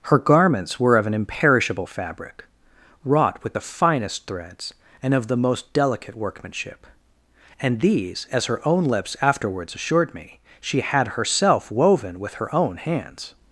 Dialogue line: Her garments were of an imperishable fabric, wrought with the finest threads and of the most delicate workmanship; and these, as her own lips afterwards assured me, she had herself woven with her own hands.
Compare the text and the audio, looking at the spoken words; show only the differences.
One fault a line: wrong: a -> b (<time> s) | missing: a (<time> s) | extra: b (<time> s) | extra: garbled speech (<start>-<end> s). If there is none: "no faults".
no faults